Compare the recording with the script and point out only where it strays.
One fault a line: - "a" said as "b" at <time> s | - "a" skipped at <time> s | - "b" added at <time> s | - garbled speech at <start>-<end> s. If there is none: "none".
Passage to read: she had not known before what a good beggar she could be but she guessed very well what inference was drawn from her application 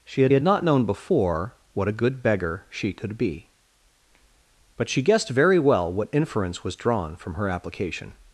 - "had" added at 0.3 s